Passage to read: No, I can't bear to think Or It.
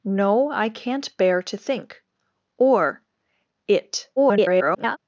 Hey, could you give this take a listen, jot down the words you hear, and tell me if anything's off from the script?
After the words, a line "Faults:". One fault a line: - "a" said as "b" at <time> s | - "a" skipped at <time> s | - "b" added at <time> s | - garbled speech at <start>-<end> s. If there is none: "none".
No, I can't bear to think Or It. [garbled]
Faults:
- garbled speech at 4.2-5.0 s